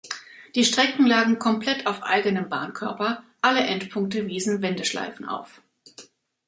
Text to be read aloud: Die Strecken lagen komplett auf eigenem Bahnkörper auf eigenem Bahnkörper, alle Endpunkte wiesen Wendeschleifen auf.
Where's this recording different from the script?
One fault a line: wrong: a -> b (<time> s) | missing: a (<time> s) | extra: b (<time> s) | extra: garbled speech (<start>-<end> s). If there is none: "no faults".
missing: auf eigenem Bahnkörper (3.2 s)